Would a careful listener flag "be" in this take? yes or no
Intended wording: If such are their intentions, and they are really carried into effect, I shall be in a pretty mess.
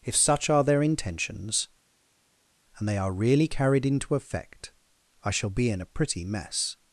no